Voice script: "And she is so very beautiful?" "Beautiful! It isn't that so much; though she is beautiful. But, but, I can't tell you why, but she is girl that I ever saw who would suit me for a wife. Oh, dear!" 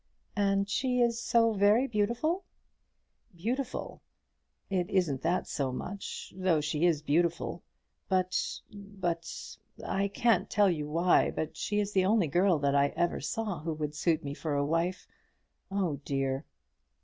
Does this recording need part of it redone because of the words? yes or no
yes